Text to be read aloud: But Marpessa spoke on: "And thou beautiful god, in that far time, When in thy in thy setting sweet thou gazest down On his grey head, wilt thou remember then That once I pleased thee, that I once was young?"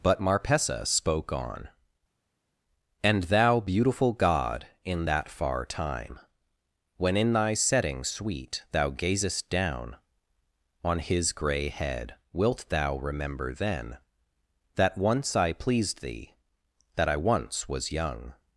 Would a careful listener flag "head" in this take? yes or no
no